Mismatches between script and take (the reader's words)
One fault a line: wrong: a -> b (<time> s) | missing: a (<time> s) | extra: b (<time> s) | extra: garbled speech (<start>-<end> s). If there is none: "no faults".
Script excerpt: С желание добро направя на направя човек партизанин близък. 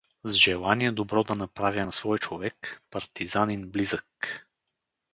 extra: да (1.2 s)
wrong: направя -> свой (1.9 s)